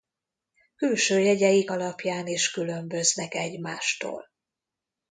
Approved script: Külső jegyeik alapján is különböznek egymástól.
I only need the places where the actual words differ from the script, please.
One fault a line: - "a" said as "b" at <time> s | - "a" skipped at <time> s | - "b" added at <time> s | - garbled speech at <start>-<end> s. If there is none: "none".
none